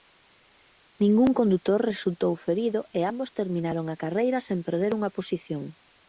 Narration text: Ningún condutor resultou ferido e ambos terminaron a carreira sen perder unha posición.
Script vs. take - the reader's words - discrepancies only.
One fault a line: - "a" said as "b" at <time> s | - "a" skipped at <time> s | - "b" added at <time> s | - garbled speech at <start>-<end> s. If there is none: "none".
none